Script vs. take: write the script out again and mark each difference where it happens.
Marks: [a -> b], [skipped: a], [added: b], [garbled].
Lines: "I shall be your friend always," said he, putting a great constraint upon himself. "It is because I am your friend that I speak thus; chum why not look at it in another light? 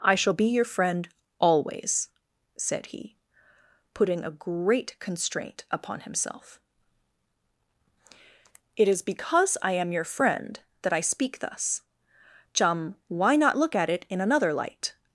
"I shall be your friend always," said he, putting a great constraint upon himself. "It is because I am your friend that I speak thus; chum why not look at it in another light?